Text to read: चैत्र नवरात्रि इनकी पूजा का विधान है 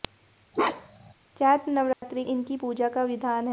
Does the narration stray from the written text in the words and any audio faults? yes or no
yes